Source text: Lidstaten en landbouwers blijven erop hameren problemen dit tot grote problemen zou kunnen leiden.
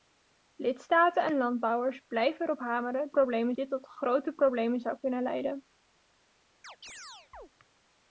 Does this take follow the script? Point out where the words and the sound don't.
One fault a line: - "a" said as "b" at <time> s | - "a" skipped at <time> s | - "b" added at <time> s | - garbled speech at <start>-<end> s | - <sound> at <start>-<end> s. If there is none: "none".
- chirp at 6.6-7.5 s